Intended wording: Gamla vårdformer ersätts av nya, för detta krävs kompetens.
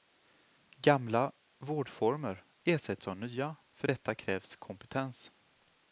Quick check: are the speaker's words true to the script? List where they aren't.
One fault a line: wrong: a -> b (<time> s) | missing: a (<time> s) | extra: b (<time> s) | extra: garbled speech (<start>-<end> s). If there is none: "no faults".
no faults